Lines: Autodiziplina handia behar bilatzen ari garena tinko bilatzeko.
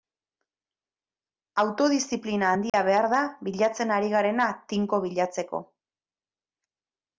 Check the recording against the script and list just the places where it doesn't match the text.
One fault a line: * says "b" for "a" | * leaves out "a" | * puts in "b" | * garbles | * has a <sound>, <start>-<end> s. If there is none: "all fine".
* has a dropout, 2.7-2.7 s
* puts in "da"